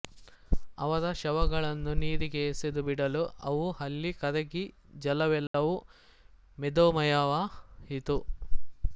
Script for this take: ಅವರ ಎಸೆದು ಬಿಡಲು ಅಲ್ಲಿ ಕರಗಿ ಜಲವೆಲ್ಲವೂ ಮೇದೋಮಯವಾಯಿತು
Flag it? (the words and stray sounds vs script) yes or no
yes